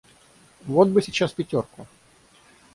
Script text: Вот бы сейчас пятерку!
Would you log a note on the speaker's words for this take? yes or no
no